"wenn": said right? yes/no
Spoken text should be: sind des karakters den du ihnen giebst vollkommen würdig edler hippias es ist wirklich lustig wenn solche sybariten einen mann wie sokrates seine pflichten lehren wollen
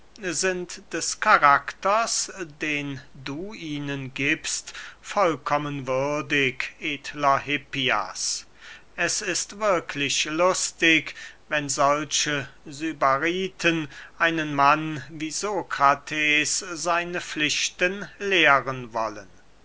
yes